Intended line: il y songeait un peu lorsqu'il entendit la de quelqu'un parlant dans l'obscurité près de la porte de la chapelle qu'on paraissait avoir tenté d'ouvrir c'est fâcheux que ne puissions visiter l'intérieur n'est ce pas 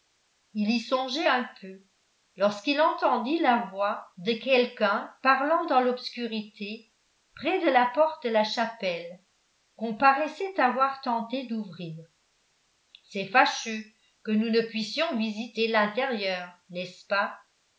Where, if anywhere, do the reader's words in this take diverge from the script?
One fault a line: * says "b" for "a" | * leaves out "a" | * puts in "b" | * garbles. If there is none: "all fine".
* puts in "voix"
* puts in "nous"